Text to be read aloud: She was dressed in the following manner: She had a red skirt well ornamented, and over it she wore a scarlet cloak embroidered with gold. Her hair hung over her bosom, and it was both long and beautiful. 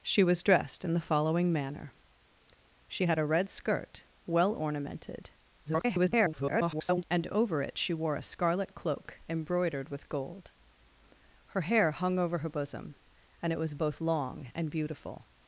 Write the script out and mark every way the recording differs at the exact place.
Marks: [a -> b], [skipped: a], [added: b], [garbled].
She was dressed in the following manner: She had a red skirt well ornamented, [garbled] and over it she wore a scarlet cloak embroidered with gold. Her hair hung over her bosom, and it was both long and beautiful.